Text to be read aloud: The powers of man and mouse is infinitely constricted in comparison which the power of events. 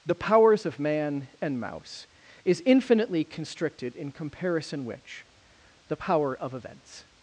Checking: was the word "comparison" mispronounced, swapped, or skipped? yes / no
no